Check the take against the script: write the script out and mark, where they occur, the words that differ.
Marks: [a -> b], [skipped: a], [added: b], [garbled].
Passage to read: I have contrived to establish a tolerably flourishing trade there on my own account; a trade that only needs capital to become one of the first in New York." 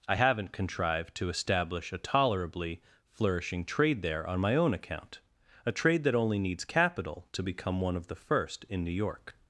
I [have -> haven't] contrived to establish a tolerably flourishing trade there on my own account; a trade that only needs capital to become one of the first in New York."